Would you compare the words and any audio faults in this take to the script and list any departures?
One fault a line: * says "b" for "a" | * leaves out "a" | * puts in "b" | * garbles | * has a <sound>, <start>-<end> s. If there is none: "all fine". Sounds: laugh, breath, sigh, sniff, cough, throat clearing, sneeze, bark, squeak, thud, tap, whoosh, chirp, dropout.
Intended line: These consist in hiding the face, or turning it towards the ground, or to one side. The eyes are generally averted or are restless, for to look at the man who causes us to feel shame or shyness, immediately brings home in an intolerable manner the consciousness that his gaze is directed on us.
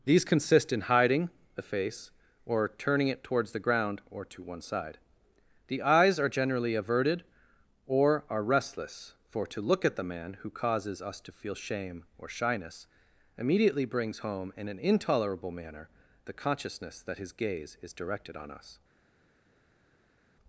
all fine